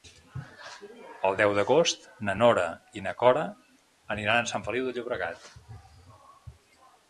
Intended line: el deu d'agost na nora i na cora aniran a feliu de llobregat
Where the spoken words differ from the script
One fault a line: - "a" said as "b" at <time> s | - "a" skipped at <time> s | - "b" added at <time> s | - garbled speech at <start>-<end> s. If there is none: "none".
- "sant" added at 4.6 s